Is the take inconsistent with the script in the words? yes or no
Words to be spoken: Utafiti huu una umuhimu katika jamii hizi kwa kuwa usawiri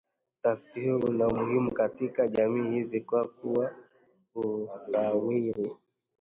no